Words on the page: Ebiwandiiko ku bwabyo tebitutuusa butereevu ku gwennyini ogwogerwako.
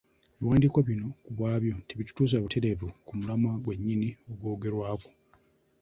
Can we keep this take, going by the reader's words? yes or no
no